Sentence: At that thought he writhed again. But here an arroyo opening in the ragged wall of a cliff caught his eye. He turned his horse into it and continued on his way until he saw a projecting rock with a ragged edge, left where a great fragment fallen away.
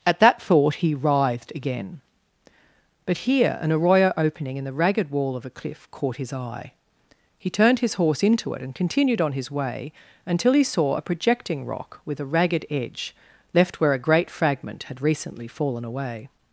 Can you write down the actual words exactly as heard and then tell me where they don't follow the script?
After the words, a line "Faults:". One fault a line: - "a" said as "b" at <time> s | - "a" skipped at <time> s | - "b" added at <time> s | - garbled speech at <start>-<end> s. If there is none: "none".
At that thought he writhed again. But here an arroyo opening in the ragged wall of a cliff caught his eye. He turned his horse into it and continued on his way until he saw a projecting rock with a ragged edge, left where a great fragment had recently fallen away.
Faults:
- "had recently" added at 14.8 s